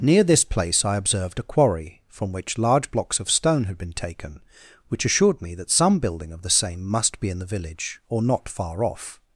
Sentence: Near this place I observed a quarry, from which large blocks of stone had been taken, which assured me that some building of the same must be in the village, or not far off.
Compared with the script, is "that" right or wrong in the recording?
right